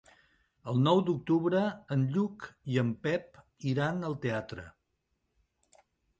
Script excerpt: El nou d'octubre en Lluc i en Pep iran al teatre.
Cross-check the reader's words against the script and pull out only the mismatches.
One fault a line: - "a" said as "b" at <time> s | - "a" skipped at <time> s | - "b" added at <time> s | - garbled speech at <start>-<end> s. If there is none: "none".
none